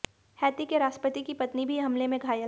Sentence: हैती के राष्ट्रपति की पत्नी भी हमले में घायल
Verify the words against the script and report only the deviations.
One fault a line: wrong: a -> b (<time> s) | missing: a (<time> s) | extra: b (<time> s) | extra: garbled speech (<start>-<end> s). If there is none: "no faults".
no faults